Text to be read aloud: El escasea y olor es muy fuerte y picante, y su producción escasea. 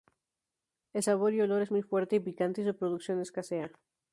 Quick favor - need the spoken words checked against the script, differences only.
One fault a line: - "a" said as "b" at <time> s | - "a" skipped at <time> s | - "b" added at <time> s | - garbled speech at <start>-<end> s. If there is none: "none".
- "escasea" said as "sabor" at 1.0 s